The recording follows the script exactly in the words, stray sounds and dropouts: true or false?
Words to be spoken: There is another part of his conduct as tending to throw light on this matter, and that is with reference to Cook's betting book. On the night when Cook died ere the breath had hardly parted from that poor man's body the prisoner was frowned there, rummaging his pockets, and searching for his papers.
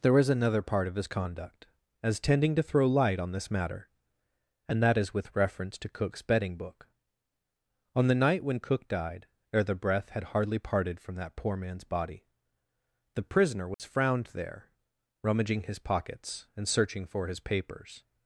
false